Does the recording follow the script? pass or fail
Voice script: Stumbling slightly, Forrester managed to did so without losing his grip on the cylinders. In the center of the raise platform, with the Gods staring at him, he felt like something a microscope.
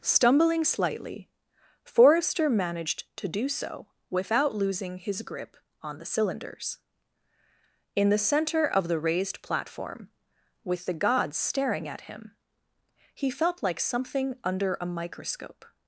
fail